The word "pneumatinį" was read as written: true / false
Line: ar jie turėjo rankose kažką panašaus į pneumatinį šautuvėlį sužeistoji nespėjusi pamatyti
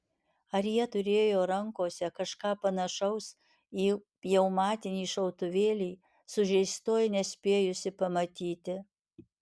true